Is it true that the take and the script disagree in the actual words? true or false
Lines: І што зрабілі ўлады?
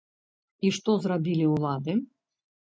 false